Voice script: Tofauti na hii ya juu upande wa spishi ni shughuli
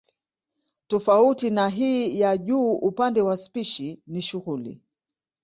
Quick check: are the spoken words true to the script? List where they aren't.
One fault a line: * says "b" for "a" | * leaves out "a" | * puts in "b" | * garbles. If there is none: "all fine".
all fine